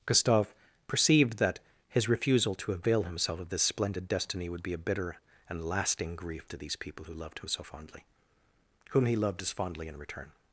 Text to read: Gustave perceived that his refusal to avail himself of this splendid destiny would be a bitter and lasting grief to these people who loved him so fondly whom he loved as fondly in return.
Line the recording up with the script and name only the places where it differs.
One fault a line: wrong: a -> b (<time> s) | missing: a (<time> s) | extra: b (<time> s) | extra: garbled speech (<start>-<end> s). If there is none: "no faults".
no faults